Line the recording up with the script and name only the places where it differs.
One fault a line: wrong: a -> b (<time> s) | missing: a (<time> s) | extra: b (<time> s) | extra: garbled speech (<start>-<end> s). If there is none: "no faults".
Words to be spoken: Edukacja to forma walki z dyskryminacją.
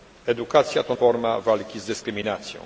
no faults